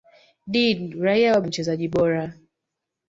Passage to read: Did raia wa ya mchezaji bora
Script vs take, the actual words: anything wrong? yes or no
no